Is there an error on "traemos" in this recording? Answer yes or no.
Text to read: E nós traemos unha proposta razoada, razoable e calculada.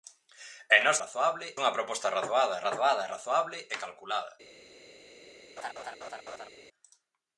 yes